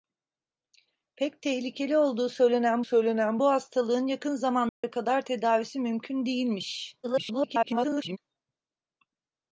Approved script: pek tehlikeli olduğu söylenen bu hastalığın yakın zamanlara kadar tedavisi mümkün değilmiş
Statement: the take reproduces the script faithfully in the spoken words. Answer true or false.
false